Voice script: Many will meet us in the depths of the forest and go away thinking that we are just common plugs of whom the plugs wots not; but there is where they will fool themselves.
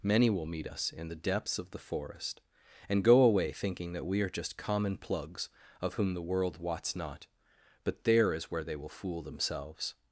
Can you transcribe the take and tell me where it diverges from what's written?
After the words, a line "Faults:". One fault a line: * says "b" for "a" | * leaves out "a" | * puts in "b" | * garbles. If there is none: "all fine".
Many will meet us in the depths of the forest and go away thinking that we are just common plugs of whom the world wots not; but there is where they will fool themselves.
Faults:
* says "world" for "plugs"